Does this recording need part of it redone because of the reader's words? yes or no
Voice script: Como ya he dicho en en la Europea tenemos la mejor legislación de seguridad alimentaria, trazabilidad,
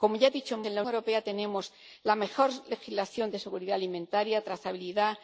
no